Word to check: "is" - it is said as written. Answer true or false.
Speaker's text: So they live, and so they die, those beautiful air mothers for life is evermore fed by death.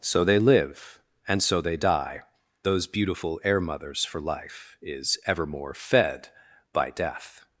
true